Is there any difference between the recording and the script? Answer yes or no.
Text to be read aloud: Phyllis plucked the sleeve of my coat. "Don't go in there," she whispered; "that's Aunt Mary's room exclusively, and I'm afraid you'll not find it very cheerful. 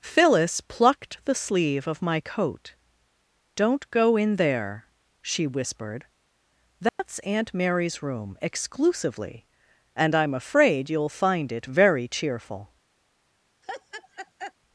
yes